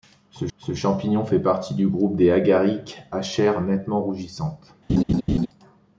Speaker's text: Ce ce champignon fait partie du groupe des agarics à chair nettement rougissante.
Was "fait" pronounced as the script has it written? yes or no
yes